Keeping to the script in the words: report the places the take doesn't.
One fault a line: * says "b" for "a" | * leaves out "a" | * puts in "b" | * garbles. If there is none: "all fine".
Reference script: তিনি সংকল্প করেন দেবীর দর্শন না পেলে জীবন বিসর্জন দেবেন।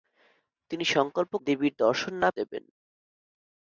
* leaves out "করেন"
* leaves out "পেলে জীবন বিসর্জন"